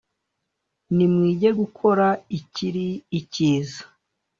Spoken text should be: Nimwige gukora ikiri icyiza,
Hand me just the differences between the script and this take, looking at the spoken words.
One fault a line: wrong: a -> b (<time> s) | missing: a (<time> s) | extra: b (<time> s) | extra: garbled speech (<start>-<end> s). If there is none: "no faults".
no faults